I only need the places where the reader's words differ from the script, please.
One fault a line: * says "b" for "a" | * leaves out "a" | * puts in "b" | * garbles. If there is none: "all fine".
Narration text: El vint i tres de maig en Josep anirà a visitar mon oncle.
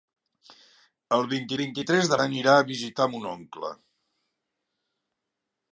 * puts in "vint"
* leaves out "maig en Josep"